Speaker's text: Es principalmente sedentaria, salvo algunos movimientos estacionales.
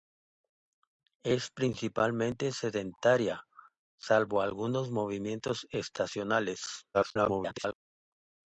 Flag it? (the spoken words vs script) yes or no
yes